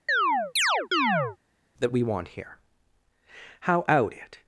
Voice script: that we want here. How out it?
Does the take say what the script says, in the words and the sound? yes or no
no